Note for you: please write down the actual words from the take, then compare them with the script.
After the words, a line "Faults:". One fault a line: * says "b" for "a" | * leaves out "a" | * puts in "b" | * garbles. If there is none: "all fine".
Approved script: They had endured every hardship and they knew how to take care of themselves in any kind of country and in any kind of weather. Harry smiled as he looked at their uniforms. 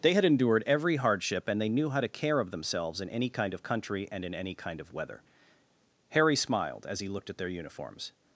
They had endured every hardship and they knew how to care of themselves in any kind of country and in any kind of weather. Harry smiled as he looked at their uniforms.
Faults:
* leaves out "take"